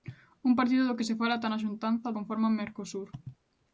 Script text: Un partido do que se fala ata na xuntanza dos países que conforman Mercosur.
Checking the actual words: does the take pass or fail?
fail